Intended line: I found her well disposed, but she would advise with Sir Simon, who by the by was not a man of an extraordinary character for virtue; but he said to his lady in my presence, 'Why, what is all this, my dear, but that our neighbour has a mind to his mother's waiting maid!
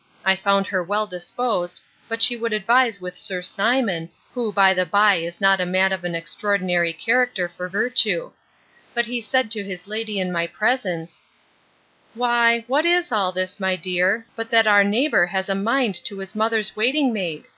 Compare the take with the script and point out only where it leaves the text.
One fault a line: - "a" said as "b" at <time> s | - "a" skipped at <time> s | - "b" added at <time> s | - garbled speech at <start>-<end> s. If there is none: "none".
- "was" said as "is" at 5.2 s